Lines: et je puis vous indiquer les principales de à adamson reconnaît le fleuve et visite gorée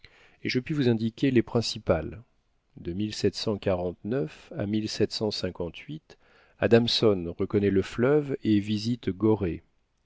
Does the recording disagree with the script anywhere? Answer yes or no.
no